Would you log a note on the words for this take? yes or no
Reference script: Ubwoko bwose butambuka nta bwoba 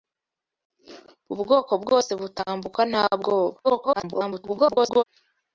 yes